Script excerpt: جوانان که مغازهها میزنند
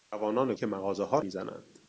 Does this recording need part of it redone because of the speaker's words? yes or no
no